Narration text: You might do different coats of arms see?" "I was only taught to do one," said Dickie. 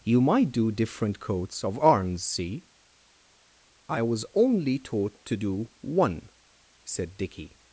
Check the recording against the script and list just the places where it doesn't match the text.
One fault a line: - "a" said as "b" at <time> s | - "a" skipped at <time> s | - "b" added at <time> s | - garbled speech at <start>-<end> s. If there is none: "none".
none